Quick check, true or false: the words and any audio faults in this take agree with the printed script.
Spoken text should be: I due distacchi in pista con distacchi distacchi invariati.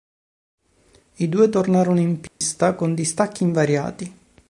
false